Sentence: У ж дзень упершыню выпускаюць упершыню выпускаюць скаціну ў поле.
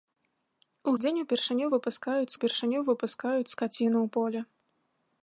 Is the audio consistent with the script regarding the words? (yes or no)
yes